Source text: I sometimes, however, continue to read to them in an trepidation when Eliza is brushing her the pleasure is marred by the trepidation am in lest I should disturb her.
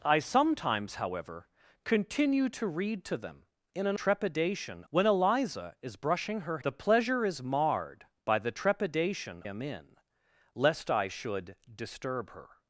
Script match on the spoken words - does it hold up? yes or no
yes